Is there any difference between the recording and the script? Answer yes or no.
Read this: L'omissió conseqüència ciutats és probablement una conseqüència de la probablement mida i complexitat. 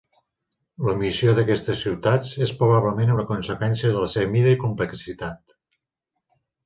yes